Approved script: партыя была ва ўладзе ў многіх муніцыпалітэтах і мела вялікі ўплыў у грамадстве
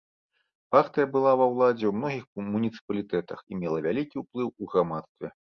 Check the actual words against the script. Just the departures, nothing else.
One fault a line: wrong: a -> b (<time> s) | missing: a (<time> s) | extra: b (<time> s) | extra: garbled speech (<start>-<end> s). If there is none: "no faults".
no faults